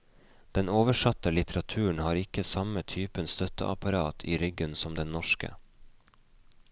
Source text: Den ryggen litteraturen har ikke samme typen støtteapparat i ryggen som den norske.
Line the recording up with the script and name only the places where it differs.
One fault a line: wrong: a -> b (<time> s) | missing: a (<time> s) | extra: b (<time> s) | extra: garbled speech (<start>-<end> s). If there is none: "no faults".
wrong: ryggen -> oversatte (0.7 s)